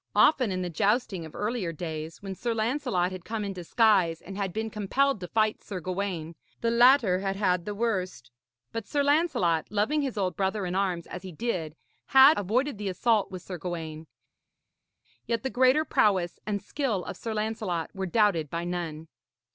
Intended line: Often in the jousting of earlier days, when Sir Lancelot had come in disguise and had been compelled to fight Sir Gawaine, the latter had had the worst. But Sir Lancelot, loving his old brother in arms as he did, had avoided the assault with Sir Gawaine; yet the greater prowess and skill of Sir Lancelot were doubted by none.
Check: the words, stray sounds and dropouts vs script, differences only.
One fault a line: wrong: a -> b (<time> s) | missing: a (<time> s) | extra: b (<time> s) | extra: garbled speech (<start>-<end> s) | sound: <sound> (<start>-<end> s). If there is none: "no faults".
no faults